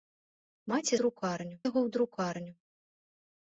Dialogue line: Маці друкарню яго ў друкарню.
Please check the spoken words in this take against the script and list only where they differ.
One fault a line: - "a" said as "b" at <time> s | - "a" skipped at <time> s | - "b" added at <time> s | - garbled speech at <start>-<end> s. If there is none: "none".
none